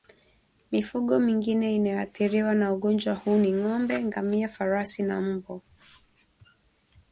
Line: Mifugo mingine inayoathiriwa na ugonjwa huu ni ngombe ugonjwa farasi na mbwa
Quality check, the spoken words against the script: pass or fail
fail